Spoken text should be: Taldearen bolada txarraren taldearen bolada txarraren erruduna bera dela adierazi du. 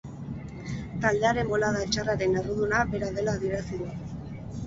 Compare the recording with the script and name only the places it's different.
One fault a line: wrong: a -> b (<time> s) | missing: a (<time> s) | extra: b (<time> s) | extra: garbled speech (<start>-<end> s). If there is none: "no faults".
missing: taldearen bolada txarraren (2.4 s)